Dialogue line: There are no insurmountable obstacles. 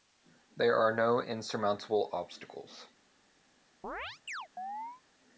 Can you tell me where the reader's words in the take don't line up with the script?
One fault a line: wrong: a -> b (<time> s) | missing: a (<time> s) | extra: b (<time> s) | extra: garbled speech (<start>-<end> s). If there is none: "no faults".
no faults